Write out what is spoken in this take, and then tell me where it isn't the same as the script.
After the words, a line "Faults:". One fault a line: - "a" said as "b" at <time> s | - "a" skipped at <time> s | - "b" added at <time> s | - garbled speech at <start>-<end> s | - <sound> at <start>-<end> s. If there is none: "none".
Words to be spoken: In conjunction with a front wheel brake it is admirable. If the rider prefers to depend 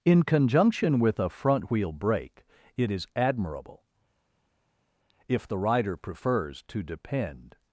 In conjunction with a front wheel brake it is admirable. If the rider prefers to depend
Faults:
none